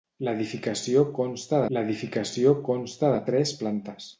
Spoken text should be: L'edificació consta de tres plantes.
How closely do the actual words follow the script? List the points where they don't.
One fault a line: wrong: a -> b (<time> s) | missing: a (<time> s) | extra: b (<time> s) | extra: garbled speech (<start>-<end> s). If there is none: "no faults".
extra: l'edificació consta (1.8 s)